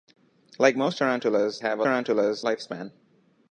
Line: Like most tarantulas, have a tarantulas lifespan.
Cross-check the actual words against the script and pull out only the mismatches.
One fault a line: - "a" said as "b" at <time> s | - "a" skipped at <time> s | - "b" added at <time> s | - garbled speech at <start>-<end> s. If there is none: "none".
none